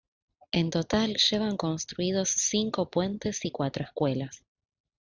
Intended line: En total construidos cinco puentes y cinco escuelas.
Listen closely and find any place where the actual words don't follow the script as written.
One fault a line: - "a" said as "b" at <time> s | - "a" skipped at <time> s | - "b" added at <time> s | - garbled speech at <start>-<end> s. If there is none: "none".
- "llevan" added at 1.2 s
- "cinco" said as "cuatro" at 3.5 s